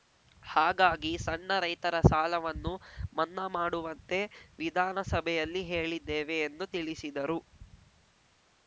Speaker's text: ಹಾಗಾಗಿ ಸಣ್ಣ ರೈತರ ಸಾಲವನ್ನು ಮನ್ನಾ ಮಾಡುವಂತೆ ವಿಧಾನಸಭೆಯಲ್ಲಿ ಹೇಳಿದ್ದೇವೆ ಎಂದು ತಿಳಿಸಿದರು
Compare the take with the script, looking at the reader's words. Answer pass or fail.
pass